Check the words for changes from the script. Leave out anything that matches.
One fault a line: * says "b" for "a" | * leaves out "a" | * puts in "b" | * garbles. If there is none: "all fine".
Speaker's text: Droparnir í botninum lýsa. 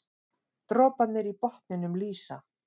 all fine